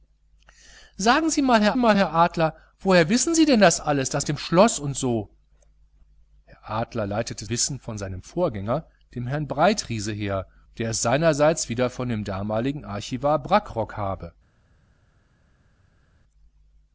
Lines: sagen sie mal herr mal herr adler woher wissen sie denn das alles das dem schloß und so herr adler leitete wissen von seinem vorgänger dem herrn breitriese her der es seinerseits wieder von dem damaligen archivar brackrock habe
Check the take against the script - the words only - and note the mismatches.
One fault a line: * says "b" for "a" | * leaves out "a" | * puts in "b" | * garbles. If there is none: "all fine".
all fine